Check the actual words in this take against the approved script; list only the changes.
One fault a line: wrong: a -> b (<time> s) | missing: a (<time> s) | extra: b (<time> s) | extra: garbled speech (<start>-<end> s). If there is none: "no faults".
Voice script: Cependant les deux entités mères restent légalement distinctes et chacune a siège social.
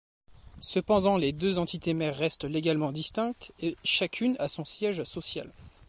extra: son (4.5 s)